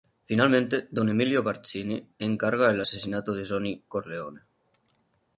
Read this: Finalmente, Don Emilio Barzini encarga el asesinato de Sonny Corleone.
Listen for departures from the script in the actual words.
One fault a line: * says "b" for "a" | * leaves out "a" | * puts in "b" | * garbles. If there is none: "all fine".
all fine